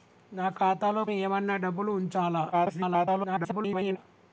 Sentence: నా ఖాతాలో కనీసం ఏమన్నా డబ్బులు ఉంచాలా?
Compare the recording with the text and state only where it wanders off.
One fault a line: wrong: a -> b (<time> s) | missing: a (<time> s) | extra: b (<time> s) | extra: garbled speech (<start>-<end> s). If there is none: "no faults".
missing: కనీసం (1.1 s)
extra: garbled speech (2.5-4.0 s)